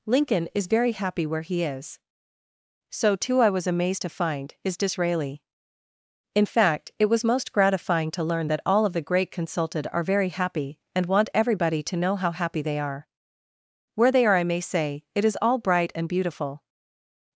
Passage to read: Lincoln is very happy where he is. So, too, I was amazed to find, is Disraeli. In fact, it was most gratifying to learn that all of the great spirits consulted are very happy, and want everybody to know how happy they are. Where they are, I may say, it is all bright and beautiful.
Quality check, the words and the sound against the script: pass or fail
fail